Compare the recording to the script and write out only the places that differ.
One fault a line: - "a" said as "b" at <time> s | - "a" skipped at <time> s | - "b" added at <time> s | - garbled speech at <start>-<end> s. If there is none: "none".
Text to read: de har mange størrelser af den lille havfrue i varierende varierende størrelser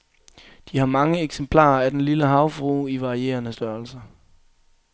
- "størrelser" said as "eksemplarer" at 1.2 s
- "varierende" skipped at 3.5 s